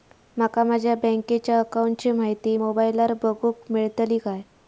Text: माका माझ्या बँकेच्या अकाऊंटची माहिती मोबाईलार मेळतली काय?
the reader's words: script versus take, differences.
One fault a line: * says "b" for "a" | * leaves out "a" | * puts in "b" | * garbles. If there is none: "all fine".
* puts in "बगुक"